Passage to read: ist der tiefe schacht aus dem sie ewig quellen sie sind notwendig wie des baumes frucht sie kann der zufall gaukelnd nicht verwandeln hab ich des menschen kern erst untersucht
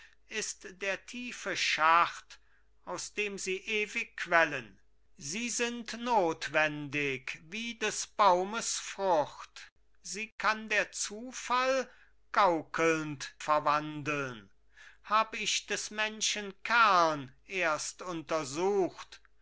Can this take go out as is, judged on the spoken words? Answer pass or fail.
fail